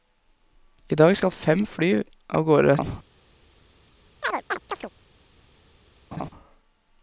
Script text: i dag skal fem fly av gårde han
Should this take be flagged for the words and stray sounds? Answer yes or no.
yes